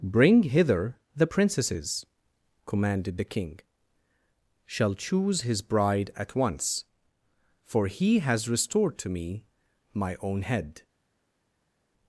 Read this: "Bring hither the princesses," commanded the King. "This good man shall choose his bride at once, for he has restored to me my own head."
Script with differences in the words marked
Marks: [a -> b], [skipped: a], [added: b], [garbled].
"Bring hither the princesses," commanded the King. [skipped: "This good man] shall choose his bride at once, for he has restored to me my own head."